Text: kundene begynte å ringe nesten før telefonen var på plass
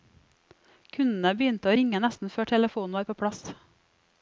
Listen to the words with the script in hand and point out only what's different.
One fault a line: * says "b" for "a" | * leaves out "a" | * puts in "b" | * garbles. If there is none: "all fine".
all fine